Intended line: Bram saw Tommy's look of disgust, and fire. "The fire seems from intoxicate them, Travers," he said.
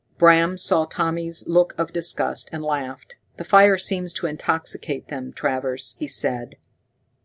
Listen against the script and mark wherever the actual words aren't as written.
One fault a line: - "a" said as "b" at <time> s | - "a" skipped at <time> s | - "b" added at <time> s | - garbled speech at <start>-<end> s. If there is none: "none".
- "fire" said as "laughed" at 2.6 s
- "from" said as "to" at 4.1 s